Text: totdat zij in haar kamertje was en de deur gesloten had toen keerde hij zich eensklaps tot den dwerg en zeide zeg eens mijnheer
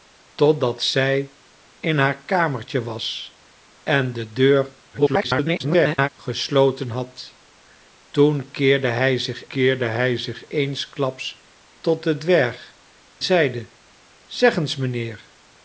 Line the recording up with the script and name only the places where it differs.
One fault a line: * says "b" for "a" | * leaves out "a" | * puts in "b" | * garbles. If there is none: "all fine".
* garbles
* puts in "keerde hij zich"
* leaves out "en"